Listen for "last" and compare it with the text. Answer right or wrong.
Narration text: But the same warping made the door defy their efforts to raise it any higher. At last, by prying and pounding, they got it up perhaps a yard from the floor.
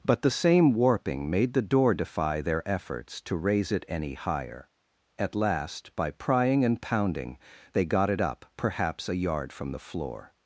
right